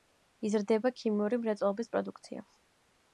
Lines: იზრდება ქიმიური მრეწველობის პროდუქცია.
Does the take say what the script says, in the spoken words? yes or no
yes